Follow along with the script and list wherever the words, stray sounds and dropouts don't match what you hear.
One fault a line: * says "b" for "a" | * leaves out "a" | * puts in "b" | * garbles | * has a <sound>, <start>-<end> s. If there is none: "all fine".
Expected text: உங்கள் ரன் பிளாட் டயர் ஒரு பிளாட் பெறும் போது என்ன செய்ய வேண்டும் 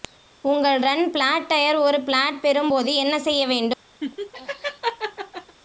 * has a laugh, 4.0-5.6 s